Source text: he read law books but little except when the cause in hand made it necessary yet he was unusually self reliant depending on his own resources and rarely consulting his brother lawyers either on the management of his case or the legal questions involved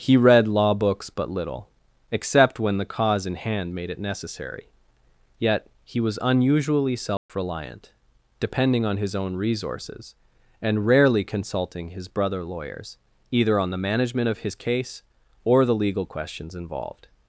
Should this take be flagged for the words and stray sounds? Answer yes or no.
yes